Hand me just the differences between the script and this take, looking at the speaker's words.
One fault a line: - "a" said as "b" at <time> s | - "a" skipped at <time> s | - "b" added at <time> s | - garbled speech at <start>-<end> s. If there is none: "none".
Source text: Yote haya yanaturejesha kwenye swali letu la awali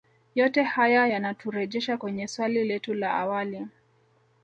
none